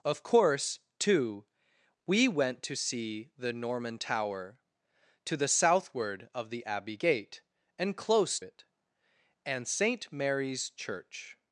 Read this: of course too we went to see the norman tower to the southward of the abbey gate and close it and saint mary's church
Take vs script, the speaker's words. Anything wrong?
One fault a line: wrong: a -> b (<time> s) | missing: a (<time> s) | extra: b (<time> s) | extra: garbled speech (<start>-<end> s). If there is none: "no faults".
no faults